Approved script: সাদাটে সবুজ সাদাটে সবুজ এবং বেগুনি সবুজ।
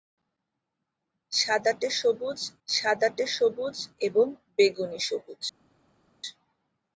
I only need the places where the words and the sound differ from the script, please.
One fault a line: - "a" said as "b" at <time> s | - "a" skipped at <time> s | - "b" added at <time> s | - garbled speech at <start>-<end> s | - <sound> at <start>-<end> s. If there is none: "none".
none